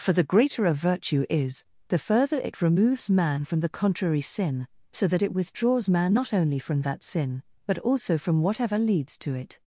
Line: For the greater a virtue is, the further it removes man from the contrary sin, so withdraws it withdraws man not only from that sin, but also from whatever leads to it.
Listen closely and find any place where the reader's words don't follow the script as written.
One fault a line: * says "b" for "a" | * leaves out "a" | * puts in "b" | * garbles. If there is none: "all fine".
* says "that" for "withdraws"